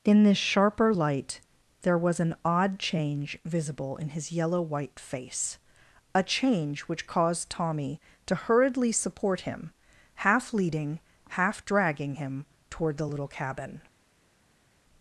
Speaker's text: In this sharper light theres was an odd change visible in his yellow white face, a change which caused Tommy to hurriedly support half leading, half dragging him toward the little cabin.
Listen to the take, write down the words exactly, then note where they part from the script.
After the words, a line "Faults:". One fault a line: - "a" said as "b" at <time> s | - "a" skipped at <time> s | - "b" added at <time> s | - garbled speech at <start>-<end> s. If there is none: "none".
In this sharper light there was an odd change visible in his yellow white face, a change which caused Tommy to hurriedly support him, half leading, half dragging him toward the little cabin.
Faults:
- "theres" said as "there" at 1.8 s
- "him" added at 9.4 s